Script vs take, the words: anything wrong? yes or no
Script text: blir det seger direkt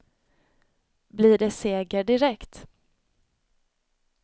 no